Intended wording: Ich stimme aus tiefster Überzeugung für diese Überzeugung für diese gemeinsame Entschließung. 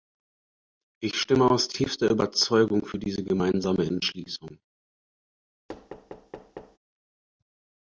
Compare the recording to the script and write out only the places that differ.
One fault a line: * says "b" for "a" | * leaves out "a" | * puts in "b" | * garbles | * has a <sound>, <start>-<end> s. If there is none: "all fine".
* leaves out "Überzeugung für diese"
* has a thud, 5.7-6.8 s